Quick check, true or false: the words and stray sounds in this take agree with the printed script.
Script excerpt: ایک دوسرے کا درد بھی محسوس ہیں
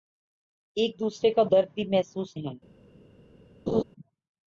false